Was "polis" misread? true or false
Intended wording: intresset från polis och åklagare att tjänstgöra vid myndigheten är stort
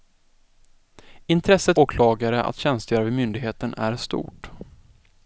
true